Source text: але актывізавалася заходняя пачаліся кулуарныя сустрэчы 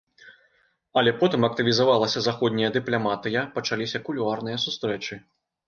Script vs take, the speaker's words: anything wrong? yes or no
yes